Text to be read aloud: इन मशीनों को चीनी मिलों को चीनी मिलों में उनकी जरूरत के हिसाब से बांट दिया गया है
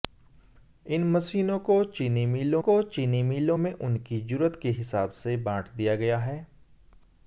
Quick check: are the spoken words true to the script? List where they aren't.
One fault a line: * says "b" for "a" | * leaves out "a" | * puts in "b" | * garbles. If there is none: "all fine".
all fine